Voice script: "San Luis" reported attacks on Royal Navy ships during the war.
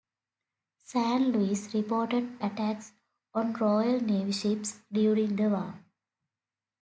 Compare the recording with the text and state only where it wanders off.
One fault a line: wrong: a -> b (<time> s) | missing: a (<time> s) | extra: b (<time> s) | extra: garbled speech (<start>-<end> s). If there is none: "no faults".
no faults